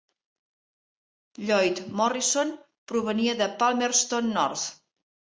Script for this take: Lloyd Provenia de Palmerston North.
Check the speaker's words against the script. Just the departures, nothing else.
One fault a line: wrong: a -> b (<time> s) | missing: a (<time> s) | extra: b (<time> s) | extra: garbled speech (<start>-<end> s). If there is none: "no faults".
extra: Morrison (2.0 s)